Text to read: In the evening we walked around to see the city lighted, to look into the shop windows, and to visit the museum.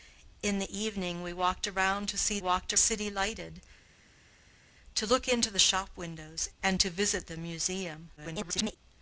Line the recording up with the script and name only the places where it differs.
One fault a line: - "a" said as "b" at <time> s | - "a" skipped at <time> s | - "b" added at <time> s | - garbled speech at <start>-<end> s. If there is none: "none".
- "the" said as "walked" at 2.4 s
- garbled speech at 8.2-8.8 s